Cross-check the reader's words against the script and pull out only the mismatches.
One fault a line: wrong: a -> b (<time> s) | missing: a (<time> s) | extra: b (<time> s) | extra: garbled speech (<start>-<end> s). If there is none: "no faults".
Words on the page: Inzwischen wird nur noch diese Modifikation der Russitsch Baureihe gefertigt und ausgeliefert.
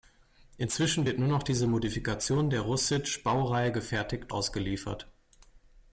missing: und (4.3 s)